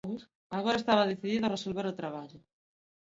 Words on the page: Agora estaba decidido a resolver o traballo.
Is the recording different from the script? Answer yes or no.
no